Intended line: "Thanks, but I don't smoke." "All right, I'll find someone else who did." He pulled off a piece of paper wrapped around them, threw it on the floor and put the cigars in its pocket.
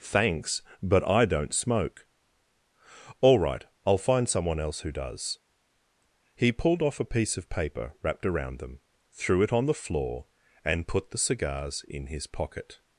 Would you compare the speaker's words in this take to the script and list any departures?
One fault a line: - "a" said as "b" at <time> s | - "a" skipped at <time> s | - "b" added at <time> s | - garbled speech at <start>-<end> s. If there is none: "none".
- "did" said as "does" at 4.9 s
- "its" said as "his" at 12.1 s